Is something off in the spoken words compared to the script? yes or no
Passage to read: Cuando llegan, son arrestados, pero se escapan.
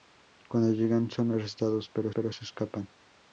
yes